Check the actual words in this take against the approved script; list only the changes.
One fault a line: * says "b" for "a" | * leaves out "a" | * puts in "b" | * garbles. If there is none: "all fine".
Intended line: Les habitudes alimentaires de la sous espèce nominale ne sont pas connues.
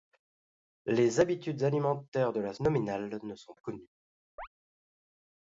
* leaves out "sous espèce"
* leaves out "pas"